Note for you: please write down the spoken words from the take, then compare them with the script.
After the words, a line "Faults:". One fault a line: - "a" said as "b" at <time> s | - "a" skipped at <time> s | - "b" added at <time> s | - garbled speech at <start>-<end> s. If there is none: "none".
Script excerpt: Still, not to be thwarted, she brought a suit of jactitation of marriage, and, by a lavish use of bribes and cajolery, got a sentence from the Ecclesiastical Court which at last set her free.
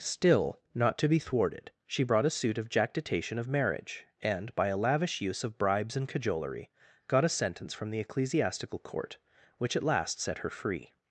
Still, not to be thwarted, she brought a suit of jactitation of marriage, and, by a lavish use of bribes and cajolery, got a sentence from the Ecclesiastical Court which at last set her free.
Faults:
none